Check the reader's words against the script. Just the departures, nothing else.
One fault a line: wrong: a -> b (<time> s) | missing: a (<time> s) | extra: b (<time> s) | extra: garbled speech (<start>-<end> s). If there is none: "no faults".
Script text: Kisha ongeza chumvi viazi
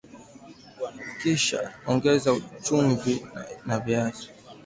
extra: na (3.7 s)